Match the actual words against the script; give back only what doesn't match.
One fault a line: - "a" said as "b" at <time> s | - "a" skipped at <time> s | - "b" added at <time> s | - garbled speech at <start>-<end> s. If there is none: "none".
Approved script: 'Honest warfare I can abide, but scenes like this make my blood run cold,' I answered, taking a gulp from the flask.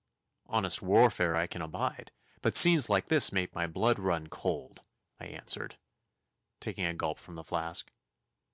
none